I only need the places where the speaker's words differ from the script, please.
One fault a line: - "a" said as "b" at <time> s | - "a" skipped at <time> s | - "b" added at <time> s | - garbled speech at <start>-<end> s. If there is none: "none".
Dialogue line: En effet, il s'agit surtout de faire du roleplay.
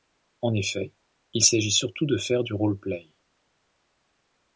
none